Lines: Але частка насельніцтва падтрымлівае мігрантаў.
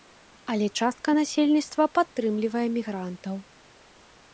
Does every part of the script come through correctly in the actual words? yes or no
yes